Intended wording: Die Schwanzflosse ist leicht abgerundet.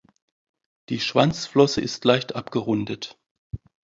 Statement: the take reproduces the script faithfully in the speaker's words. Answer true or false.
true